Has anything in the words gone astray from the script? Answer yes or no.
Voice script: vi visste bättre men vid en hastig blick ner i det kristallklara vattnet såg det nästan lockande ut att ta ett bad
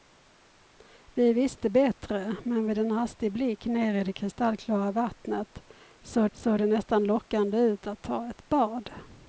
yes